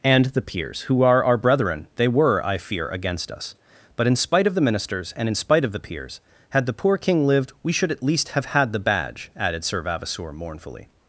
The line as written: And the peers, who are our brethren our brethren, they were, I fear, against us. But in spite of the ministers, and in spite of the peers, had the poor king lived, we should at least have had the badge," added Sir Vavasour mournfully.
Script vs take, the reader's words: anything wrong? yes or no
yes